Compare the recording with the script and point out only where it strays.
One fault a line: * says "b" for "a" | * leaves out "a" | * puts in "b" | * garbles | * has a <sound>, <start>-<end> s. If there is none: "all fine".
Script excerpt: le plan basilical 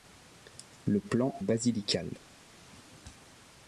all fine